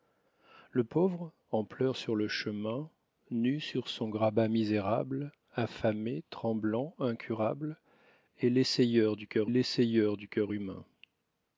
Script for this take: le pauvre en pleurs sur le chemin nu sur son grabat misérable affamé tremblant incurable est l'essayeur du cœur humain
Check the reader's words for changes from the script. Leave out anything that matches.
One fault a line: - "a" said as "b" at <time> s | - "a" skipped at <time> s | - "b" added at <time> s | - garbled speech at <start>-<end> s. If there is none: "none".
- "l'essayeur du cœur" added at 9.5 s